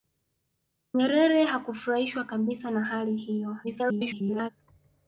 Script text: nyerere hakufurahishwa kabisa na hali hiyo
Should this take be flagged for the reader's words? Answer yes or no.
yes